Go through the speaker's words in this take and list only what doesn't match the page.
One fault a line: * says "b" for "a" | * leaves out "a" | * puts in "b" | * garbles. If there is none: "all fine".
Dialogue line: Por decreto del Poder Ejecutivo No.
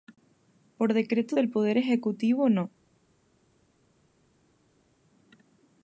all fine